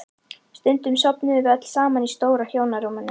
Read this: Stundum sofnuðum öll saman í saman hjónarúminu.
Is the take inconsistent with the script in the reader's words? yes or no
yes